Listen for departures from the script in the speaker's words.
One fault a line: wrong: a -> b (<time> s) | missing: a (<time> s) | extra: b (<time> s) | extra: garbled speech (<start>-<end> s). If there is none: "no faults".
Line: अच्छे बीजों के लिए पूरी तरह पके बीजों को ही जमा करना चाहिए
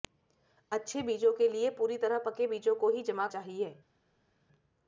missing: करना (3.3 s)